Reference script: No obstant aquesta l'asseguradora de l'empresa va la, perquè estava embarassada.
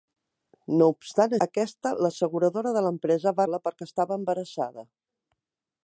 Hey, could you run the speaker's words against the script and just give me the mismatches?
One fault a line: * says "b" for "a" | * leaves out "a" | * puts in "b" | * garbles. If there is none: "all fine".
all fine